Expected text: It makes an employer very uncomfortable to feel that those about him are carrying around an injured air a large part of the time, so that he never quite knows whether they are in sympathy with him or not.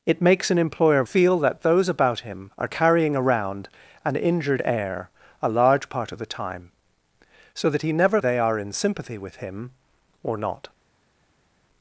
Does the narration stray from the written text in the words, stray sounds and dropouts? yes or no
yes